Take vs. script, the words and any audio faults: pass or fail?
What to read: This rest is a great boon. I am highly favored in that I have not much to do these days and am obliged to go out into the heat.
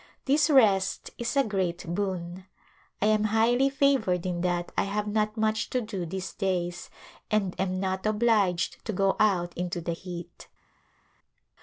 fail